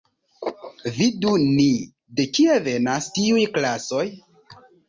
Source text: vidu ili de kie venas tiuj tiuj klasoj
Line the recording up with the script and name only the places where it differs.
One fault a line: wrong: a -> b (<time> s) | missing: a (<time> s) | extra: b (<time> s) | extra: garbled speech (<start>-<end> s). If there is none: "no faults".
wrong: ili -> ni (1.4 s)
missing: tiuj (3.5 s)